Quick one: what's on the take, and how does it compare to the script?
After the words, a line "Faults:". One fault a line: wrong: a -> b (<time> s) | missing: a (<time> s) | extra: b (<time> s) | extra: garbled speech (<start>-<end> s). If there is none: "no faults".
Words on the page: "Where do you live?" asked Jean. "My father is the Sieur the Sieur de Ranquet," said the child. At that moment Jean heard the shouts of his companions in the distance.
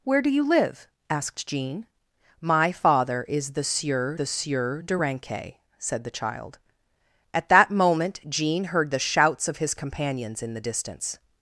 "Where do you live?" asked Jean. "My father is the Sieur the Sieur de Ranquet," said the child. At that moment Jean heard the shouts of his companions in the distance.
Faults:
no faults